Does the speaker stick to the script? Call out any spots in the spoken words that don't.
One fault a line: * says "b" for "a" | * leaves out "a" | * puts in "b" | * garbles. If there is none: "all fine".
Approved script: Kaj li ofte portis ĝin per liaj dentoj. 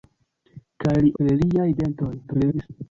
* leaves out "ofte portis ĝin"
* garbles